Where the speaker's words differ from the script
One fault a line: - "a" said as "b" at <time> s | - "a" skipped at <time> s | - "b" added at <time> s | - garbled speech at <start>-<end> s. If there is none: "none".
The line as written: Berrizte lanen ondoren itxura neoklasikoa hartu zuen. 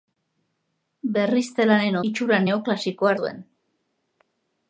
- "ondoren" skipped at 2.0 s
- "hartu" skipped at 3.1 s